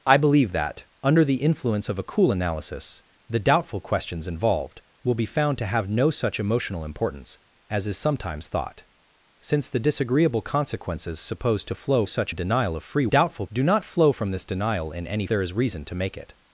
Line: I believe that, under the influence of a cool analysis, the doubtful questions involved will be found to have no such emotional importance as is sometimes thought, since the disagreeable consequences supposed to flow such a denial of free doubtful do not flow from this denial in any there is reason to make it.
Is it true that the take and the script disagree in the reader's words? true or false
false